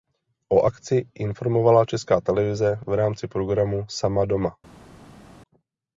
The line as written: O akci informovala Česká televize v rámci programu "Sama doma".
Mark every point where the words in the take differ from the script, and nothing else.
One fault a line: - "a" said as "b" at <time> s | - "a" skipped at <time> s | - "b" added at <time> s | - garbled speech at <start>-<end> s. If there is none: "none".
none